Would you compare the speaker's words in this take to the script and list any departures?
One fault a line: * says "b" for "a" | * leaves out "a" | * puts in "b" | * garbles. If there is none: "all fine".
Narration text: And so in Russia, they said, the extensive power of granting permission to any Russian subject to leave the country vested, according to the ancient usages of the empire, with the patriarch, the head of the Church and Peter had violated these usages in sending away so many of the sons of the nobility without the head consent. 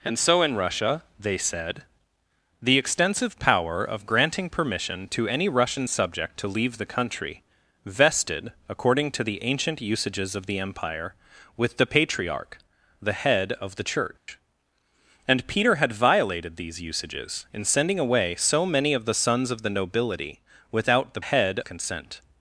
all fine